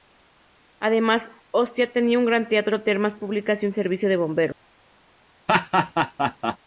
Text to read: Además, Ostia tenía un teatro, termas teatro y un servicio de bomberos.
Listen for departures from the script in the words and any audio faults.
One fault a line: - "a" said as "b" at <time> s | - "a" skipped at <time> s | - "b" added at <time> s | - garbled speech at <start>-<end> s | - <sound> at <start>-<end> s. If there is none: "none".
- "gran" added at 2.2 s
- "teatro" said as "públicas" at 3.1 s
- laugh at 5.5-6.6 s